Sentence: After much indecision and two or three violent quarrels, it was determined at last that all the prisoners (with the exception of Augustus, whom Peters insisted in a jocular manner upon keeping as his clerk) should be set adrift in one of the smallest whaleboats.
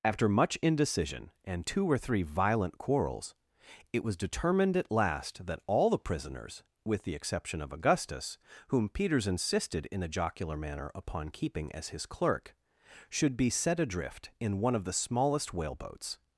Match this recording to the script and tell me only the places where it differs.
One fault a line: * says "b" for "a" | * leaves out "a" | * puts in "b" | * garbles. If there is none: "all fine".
all fine